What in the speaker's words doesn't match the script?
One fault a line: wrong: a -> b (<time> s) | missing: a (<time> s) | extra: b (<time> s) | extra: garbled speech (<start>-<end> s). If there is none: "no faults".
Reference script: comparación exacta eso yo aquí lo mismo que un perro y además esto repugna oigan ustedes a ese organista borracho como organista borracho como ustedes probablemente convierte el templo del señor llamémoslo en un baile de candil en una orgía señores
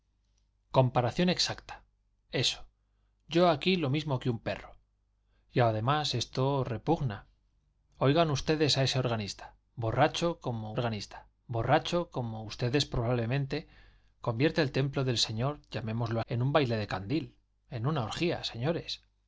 no faults